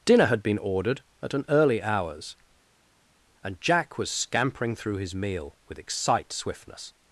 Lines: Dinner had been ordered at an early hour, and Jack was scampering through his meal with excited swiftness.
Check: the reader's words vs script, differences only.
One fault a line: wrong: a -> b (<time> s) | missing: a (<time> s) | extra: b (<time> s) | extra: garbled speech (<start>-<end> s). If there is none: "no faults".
wrong: hour -> hours (1.8 s)
wrong: excited -> excite (5.8 s)